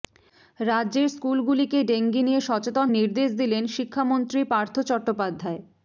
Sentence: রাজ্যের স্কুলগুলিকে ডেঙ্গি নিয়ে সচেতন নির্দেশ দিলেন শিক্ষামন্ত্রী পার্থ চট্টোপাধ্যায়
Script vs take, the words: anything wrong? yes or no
no